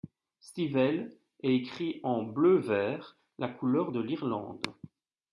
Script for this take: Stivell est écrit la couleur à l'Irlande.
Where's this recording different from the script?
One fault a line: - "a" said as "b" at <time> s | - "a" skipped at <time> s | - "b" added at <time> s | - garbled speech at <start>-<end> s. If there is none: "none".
- "en bleu vert" added at 2.0 s
- "à" said as "de" at 3.9 s